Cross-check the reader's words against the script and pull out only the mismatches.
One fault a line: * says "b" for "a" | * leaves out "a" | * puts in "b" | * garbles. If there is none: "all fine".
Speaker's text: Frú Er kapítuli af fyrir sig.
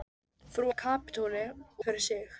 all fine